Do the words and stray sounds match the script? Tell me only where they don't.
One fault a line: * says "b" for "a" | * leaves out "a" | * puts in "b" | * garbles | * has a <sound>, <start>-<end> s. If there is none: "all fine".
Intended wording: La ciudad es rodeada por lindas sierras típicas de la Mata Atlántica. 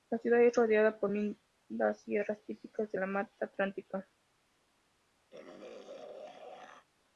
* has a throat clearing, 5.3-6.9 s